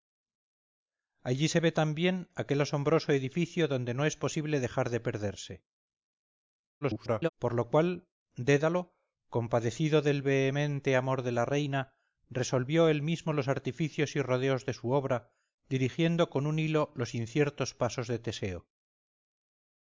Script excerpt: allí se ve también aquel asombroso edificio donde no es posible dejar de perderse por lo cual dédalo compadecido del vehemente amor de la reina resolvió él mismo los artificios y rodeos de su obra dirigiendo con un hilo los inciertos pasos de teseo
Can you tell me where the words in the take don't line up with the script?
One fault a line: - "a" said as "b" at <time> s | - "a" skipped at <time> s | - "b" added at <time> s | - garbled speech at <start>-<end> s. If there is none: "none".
- garbled speech at 6.8-7.3 s